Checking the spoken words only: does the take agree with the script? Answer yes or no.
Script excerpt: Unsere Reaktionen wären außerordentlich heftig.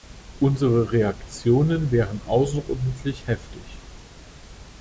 yes